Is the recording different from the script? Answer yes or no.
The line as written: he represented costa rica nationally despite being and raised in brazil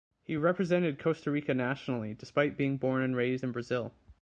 yes